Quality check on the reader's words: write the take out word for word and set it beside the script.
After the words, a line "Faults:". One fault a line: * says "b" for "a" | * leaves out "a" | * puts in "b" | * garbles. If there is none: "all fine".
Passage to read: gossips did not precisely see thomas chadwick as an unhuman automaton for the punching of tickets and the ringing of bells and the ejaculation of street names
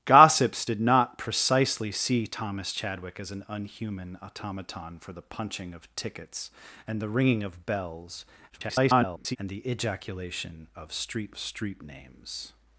gossips did not precisely see thomas chadwick as an unhuman automaton for the punching of tickets and the ringing of bells [garbled] and the ejaculation of street street names
Faults:
* garbles
* puts in "street"